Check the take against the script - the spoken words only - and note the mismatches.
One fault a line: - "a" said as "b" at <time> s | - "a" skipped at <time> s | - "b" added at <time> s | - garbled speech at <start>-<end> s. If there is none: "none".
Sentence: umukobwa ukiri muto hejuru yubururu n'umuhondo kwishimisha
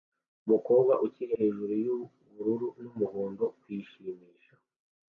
- "muto" skipped at 1.3 s